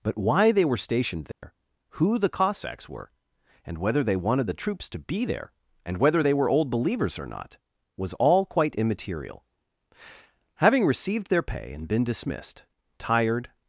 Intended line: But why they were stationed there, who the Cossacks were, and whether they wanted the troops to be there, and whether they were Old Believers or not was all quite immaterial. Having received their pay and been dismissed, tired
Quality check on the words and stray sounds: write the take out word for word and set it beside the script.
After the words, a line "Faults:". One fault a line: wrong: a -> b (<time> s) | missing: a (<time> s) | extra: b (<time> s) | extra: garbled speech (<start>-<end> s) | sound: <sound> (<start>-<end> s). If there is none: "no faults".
But why they were stationed there, who the Cossacks were, and whether they wanted the troops to be there, and whether they were Old Believers or not was all quite immaterial. Having received their pay and been dismissed, tired
Faults:
sound: dropout (1.3-1.4 s)